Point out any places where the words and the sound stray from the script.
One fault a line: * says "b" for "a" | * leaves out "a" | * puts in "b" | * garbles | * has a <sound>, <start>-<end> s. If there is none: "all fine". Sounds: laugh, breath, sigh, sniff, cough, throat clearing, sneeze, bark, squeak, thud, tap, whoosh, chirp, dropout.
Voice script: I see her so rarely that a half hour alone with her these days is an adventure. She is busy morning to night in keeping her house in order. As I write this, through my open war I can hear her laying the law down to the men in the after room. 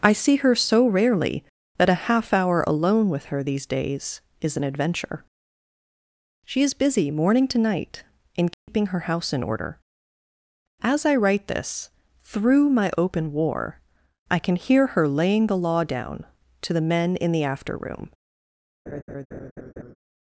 * has a dropout, 8.5-8.7 s
* has a laugh, 18.9-20.0 s